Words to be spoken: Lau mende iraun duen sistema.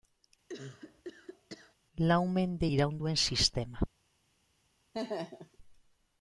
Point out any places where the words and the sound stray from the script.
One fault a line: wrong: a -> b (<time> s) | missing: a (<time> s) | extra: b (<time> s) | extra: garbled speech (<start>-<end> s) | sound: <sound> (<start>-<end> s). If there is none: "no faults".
sound: cough (0.5-1.8 s)
sound: laugh (4.9-5.6 s)